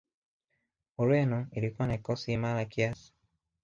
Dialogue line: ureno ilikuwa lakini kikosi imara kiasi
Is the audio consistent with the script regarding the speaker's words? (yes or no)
no